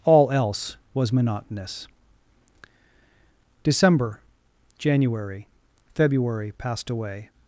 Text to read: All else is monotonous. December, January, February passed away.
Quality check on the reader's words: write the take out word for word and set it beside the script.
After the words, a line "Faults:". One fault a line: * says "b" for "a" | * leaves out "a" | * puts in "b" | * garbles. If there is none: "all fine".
All else was monotonous. December, January, February passed away.
Faults:
* says "was" for "is"